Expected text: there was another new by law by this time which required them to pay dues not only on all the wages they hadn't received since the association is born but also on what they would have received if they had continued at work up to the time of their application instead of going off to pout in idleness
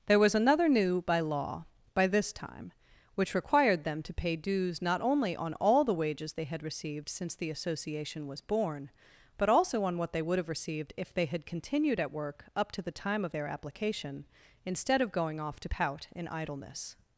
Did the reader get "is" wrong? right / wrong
wrong